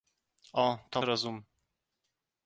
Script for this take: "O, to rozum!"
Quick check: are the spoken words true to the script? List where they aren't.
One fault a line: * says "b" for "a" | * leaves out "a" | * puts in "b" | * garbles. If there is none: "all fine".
all fine